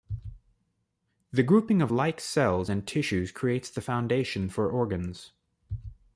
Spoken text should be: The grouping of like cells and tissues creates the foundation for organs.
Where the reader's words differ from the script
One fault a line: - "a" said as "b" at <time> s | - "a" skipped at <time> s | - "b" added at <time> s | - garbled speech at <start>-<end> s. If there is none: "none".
none